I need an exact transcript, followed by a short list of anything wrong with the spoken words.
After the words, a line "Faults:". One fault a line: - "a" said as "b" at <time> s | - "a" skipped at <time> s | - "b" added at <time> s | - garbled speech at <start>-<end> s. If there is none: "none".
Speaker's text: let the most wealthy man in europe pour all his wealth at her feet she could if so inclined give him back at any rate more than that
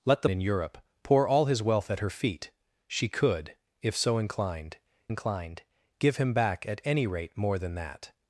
let the in europe pour all his wealth at her feet she could if so inclined inclined give him back at any rate more than that
Faults:
- "most wealthy man" skipped at 0.3 s
- "inclined" added at 5.1 s